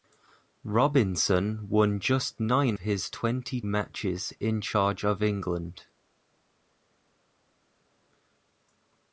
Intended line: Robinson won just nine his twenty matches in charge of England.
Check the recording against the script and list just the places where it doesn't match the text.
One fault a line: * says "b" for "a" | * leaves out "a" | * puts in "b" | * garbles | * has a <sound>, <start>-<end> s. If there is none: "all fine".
all fine